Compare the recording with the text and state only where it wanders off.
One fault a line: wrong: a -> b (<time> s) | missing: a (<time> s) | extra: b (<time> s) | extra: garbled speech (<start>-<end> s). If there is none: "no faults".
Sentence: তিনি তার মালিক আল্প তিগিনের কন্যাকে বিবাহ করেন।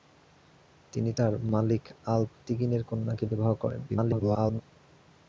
extra: garbled speech (3.9-4.6 s)